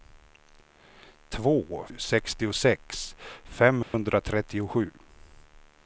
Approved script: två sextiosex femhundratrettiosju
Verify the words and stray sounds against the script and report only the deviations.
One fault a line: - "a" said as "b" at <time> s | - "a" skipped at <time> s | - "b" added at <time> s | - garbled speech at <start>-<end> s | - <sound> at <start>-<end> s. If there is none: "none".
- dropout at 3.8-3.9 s